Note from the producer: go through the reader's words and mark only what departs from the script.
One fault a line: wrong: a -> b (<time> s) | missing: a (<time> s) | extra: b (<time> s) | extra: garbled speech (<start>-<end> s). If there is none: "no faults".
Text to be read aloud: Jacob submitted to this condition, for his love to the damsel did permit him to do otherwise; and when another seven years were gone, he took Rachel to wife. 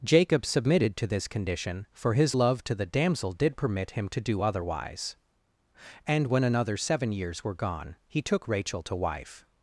no faults